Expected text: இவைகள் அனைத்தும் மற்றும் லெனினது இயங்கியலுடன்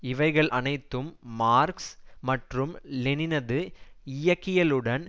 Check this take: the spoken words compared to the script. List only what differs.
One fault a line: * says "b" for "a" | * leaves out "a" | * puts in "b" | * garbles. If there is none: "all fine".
* puts in "மார்க்ஸ்"